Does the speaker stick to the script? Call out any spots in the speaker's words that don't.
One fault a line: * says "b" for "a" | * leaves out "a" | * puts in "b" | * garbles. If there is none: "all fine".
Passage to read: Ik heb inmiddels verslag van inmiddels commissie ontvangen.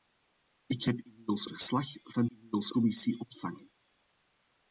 all fine